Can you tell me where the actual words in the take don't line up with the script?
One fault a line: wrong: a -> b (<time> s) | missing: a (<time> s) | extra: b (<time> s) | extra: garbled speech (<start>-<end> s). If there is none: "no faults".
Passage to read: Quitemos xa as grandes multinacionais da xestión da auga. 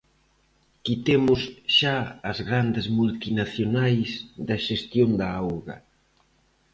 no faults